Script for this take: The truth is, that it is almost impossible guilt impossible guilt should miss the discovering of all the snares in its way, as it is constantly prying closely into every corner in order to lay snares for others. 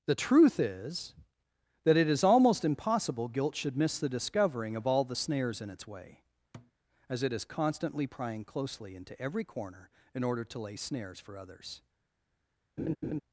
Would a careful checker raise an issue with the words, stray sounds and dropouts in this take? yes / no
yes